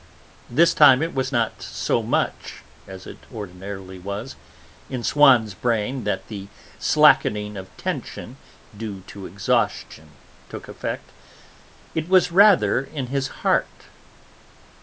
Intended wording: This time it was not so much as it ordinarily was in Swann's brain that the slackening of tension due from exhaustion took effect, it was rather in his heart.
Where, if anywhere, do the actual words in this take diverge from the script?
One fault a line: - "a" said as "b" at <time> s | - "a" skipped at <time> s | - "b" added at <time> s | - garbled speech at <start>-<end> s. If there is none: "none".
- "from" said as "to" at 9.1 s